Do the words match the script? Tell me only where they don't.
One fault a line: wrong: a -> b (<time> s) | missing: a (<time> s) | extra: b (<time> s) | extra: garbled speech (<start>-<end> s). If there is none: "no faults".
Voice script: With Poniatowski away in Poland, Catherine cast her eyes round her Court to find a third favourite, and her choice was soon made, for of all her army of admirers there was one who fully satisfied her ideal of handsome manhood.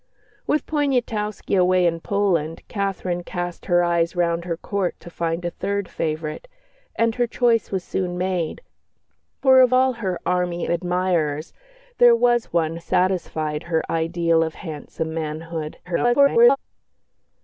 missing: of (10.7 s)
missing: who fully (12.8 s)
extra: garbled speech (15.8-16.6 s)